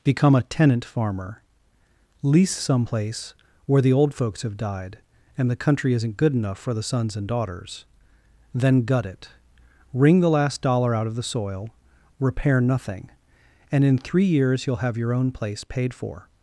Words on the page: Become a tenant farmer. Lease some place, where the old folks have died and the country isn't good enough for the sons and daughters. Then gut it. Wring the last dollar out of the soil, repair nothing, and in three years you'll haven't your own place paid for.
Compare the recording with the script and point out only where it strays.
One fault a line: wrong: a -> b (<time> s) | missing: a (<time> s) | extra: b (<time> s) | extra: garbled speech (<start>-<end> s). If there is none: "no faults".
wrong: haven't -> have (14.8 s)